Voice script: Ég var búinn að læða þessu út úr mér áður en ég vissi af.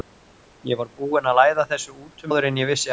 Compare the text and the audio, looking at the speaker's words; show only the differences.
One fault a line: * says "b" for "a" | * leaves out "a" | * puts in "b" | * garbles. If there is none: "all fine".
* leaves out "mér"